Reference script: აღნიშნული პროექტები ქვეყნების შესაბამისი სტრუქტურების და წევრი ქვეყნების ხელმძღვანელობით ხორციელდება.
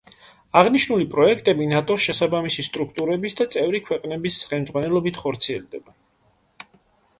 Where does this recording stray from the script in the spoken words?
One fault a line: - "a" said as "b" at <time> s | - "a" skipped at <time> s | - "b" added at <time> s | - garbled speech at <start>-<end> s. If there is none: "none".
- "ქვეყნების" said as "ნატოს" at 1.7 s